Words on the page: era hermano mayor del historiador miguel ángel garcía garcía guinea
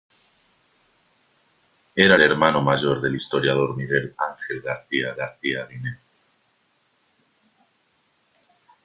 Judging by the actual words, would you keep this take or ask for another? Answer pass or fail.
pass